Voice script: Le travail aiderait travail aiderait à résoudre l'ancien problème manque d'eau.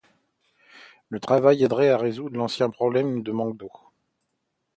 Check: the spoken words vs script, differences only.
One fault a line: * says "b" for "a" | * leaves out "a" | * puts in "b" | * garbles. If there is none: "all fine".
* leaves out "travail aiderait"
* puts in "de"